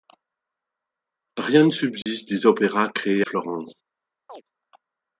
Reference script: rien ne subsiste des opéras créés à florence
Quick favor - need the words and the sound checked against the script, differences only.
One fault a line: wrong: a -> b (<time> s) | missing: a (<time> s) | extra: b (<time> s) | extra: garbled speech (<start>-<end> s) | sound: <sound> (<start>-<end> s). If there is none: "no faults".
sound: dropout (2.0-2.1 s)
missing: à (3.2 s)
sound: chirp (4.3-4.4 s)